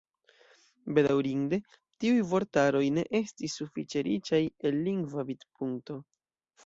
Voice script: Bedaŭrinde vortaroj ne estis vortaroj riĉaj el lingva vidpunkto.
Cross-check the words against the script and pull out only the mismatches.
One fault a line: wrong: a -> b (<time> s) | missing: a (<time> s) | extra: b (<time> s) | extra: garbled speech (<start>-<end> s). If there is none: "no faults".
extra: tiuj (2.0 s)
wrong: vortaroj -> sufiĉe (3.6 s)